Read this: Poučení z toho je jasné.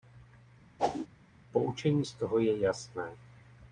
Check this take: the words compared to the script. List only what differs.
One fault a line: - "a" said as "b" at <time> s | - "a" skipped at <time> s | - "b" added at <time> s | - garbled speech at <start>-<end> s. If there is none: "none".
none